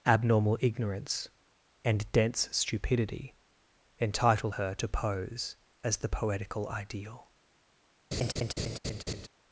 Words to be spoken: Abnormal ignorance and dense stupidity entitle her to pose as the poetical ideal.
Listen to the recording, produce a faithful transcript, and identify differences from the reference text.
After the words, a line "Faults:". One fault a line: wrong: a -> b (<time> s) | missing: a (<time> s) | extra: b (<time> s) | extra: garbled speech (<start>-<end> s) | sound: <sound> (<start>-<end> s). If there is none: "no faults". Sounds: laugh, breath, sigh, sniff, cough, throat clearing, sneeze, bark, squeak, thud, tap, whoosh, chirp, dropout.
Abnormal ignorance and dense stupidity entitle her to pose as the poetical ideal.
Faults:
sound: laugh (8.1-9.3 s)